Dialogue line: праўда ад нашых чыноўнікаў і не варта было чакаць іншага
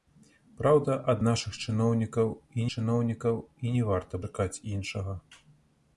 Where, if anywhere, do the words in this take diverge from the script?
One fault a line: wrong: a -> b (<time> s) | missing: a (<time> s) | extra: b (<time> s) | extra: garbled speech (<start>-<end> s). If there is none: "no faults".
extra: чыноўнікаў і (2.7 s)
missing: было (4.1 s)